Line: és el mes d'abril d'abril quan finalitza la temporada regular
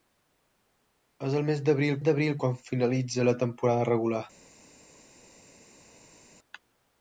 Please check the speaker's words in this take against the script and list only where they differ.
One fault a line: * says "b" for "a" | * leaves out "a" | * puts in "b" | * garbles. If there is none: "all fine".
all fine